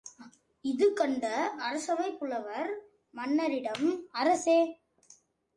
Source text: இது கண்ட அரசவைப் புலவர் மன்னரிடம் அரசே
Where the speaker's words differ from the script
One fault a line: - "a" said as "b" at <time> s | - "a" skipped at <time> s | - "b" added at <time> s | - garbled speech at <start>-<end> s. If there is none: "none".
none